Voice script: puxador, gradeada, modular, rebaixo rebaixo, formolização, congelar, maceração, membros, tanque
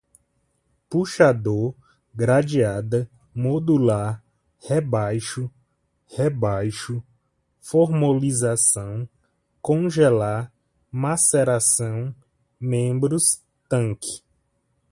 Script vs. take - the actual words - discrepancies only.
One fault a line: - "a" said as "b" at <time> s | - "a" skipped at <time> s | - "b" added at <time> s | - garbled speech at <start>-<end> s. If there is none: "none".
none